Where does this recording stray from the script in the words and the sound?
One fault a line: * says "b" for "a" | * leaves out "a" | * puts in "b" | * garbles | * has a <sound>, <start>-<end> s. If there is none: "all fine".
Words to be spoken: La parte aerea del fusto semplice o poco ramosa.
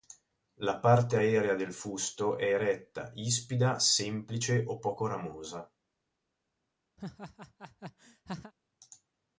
* puts in "è eretta ispida"
* has a laugh, 7.0-8.5 s